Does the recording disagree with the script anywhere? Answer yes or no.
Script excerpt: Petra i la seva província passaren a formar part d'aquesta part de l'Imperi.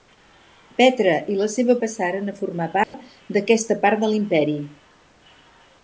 yes